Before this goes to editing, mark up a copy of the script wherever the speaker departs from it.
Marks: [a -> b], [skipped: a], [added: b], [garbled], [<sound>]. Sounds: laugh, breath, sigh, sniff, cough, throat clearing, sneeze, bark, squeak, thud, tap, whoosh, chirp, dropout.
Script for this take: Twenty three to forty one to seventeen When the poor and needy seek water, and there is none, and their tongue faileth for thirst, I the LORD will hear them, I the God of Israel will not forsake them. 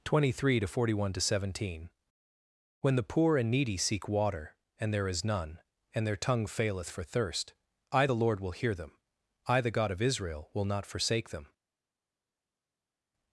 Twenty three to forty one to seventeen When the poor and needy seek water, and there is none, and their tongue faileth for thirst, I the LORD will hear them, I the God of Israel will not forsake them.